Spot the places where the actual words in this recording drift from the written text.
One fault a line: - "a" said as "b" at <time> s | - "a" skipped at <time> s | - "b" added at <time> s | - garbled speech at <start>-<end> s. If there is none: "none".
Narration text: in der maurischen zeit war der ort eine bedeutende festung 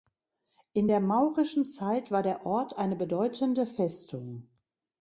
none